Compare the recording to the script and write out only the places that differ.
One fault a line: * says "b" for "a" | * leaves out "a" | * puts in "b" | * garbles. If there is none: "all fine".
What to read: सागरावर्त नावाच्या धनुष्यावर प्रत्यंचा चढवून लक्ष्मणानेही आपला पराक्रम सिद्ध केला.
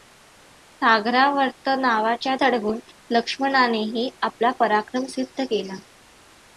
* leaves out "धनुष्यावर प्रत्यंचा"